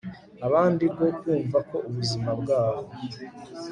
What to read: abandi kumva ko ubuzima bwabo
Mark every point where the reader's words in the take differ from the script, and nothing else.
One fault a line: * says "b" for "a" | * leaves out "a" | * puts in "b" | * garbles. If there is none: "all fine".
* puts in "rwo"